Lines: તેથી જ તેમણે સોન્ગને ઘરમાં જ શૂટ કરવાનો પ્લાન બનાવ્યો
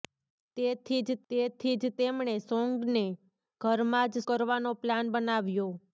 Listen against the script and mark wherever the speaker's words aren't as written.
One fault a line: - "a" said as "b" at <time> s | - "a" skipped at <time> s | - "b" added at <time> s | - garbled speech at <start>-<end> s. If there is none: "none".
- "તેથી જ" added at 1.3 s
- "શૂટ" skipped at 4.2 s